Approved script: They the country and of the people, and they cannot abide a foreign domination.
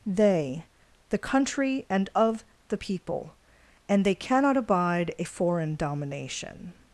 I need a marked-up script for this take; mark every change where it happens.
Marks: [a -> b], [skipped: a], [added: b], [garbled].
They the country and of the people, and they cannot abide a foreign domination.